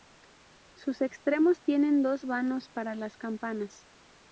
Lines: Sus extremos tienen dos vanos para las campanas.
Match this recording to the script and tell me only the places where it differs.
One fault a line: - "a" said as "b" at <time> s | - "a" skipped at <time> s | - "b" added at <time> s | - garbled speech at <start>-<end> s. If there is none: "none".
none